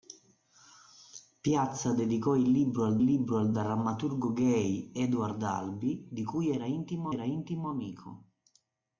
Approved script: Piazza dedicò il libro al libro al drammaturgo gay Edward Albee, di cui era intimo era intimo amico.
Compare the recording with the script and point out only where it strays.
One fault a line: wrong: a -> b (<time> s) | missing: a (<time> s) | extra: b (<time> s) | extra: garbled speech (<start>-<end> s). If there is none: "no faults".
no faults